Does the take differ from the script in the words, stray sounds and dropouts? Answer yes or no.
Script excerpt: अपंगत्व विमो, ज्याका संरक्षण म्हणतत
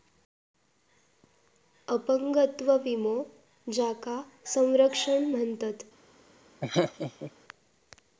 yes